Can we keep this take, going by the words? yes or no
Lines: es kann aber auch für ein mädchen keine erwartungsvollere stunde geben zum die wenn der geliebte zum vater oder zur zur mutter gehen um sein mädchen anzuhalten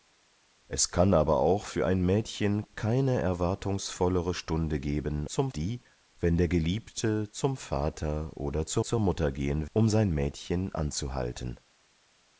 yes